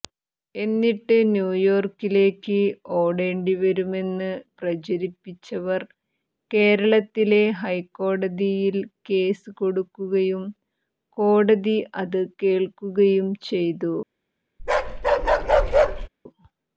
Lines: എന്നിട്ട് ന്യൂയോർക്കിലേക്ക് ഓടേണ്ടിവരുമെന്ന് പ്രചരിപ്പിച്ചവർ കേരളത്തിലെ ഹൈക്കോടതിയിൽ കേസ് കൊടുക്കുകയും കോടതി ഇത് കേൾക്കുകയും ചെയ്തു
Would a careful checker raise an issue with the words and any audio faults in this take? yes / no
yes